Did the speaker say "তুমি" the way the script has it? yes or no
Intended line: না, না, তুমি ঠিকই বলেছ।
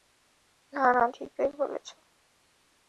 no